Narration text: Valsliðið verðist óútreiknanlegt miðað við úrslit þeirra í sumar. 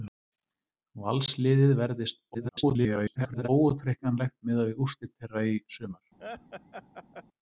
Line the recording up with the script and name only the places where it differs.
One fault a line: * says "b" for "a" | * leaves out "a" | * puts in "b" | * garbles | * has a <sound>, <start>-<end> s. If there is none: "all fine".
* garbles
* has a laugh, 6.2-7.2 s